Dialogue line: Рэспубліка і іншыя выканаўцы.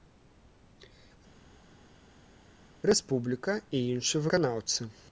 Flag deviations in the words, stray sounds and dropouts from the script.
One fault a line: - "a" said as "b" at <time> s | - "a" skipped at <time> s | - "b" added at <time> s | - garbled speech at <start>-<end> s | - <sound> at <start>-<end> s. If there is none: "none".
none